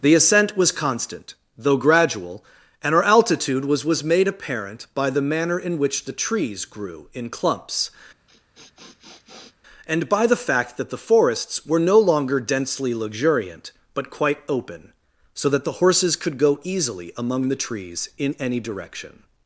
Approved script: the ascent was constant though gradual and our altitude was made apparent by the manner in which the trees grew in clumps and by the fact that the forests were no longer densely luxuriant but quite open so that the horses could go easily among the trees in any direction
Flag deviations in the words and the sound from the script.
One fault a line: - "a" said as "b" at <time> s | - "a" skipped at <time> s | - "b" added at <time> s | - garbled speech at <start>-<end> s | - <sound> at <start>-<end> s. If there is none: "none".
- "was" added at 3.9 s
- sniff at 8.3-9.6 s